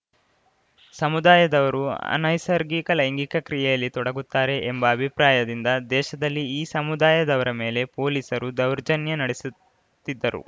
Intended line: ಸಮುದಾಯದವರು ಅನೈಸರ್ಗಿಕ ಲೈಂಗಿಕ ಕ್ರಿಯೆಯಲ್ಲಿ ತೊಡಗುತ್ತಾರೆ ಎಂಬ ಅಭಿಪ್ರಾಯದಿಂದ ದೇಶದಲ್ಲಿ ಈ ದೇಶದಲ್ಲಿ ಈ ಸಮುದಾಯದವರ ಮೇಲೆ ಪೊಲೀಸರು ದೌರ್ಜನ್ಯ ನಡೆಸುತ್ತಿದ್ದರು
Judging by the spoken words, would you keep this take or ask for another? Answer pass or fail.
fail